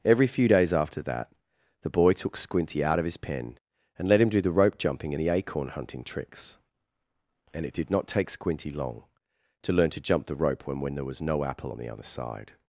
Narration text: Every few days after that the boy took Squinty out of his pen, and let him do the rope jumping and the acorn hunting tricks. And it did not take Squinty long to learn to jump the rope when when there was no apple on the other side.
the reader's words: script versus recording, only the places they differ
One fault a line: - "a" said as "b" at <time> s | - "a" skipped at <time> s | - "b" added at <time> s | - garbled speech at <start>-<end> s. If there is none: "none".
none